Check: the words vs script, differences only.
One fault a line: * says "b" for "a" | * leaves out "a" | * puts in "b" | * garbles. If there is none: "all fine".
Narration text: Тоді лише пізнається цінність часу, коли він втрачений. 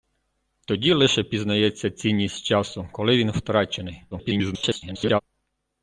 * garbles